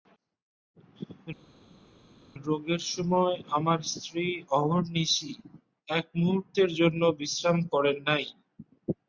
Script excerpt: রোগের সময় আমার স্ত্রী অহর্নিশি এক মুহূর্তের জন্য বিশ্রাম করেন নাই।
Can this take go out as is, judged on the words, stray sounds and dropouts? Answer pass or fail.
pass